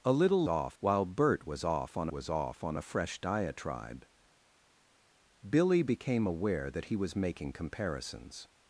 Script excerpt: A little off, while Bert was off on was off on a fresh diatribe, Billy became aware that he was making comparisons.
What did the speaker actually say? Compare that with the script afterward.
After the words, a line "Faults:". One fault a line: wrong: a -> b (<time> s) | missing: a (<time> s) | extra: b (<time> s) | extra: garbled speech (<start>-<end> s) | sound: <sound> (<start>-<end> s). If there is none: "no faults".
A little off, while Bert was off on was off on a fresh diatribe, Billy became aware that he was making comparisons.
Faults:
no faults